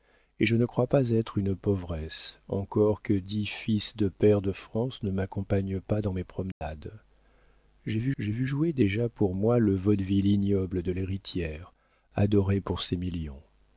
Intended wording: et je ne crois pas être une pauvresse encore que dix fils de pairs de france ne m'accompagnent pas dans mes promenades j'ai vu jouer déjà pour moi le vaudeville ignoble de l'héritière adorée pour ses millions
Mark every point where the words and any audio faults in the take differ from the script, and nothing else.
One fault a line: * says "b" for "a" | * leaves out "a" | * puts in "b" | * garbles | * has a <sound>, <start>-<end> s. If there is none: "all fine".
* has a dropout, 6.5-6.6 s
* puts in "j'ai vu"